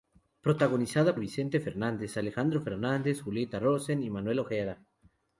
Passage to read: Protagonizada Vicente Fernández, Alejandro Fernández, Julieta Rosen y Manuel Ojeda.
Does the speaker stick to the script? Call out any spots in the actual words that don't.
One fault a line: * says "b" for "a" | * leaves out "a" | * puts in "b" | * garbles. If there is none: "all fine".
all fine